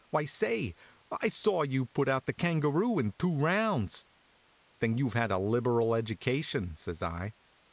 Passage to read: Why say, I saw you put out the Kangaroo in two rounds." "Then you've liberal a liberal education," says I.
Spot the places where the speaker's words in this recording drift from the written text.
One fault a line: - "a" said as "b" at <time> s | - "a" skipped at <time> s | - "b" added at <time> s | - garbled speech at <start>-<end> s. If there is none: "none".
- "liberal" said as "had" at 5.1 s